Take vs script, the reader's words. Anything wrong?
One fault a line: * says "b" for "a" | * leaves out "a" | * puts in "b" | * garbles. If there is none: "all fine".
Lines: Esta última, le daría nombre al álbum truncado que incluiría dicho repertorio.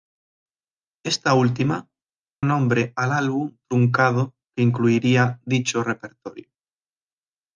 * leaves out "le daría"